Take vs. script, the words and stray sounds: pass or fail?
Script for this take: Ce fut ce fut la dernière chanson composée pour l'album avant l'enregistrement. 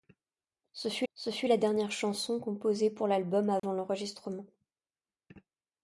fail